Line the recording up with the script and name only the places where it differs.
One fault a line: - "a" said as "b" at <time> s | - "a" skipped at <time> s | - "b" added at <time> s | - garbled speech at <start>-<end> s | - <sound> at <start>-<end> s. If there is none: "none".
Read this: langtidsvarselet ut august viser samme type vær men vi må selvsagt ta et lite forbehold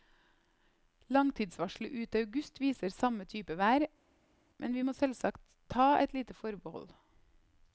none